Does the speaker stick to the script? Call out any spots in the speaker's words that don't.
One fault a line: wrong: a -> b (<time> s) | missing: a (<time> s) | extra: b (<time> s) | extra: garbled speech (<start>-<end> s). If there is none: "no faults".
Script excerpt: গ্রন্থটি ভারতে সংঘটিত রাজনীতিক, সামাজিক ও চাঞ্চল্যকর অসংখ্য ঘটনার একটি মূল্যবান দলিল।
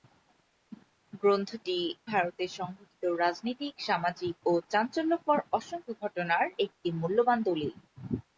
no faults